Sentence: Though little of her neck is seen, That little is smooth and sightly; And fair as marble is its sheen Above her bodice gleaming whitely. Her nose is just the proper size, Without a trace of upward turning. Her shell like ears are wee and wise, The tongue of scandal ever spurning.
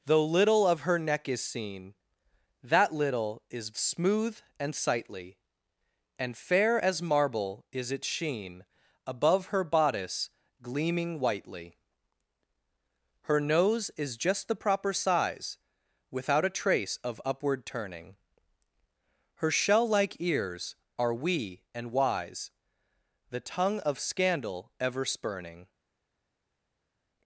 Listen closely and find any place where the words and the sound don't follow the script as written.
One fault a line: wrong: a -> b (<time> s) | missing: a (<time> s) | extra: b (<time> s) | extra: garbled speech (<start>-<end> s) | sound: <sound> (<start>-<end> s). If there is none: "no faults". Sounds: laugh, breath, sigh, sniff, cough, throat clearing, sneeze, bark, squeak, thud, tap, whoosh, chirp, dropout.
no faults